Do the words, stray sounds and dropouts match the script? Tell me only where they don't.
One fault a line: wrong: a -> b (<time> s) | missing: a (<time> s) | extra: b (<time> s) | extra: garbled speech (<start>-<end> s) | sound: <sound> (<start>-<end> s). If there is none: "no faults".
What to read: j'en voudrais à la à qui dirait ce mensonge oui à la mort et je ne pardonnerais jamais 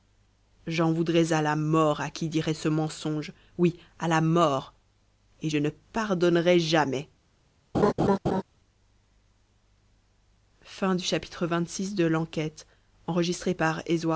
extra: mort (1.6 s)
sound: laugh (7.7-8.4 s)